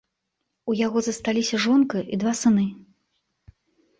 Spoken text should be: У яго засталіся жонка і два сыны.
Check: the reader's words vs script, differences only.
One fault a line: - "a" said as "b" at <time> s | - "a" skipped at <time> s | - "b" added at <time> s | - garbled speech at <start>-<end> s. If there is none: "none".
none